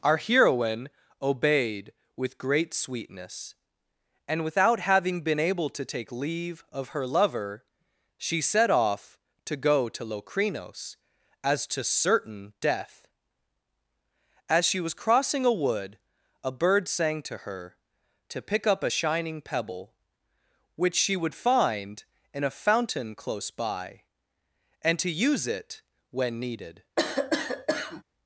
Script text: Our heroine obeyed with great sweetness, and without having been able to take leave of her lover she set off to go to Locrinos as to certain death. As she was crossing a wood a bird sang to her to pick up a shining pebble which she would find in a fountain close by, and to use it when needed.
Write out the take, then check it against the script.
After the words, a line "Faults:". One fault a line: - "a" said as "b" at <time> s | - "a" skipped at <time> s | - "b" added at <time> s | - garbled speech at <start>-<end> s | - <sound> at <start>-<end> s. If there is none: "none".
Our heroine obeyed with great sweetness, and without having been able to take leave of her lover she set off to go to Locrinos as to certain death. As she was crossing a wood a bird sang to her to pick up a shining pebble which she would find in a fountain close by, and to use it when needed.
Faults:
- cough at 27.0-28.0 s